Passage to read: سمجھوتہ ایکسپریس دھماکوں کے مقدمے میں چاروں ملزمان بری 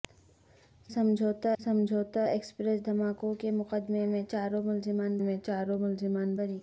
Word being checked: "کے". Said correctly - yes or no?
yes